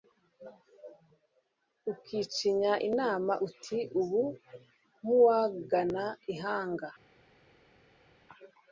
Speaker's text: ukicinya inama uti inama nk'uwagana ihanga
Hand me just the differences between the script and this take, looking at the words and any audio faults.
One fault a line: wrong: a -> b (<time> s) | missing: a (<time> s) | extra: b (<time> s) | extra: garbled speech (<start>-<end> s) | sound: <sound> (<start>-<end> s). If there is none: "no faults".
wrong: inama -> ubu (4.0 s)